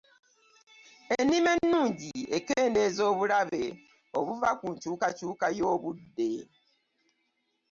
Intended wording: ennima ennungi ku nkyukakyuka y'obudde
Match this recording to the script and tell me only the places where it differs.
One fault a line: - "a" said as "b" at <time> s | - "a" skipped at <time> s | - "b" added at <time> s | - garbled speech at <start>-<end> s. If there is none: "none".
- "ekendeeza obulabe obuva" added at 2.4 s